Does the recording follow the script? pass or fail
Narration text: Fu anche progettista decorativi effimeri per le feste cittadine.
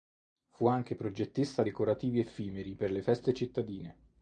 pass